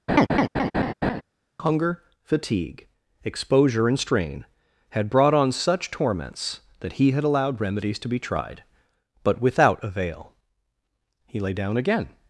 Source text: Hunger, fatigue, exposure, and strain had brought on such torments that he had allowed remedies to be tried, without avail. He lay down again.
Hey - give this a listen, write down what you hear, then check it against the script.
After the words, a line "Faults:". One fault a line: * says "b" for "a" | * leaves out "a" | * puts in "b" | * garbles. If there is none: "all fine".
Hunger, fatigue, exposure, and strain had brought on such torments that he had allowed remedies to be tried, but without avail. He lay down again.
Faults:
* puts in "but"